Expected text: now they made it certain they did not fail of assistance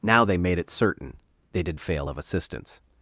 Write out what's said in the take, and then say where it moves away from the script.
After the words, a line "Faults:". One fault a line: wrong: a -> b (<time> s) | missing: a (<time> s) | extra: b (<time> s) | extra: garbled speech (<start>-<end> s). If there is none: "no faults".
now they made it certain they did fail of assistance
Faults:
missing: not (1.8 s)